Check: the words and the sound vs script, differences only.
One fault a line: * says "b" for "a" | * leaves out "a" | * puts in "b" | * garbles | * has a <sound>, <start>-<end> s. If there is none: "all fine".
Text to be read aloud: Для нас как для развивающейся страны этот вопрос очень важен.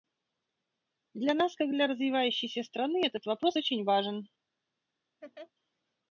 * has a laugh, 5.2-5.5 s